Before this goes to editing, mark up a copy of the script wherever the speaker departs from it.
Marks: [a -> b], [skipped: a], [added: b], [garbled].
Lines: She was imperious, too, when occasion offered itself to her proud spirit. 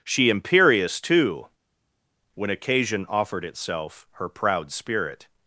She [skipped: was] imperious, too, when occasion offered itself [skipped: to] her proud spirit.